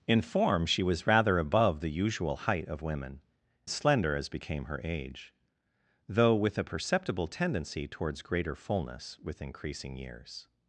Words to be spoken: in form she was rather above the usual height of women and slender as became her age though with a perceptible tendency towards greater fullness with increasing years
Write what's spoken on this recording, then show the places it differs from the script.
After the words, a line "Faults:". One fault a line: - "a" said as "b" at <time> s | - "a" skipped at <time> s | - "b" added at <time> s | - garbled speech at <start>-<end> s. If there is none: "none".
in form she was rather above the usual height of women slender as became her age though with a perceptible tendency towards greater fullness with increasing years
Faults:
- "and" skipped at 3.2 s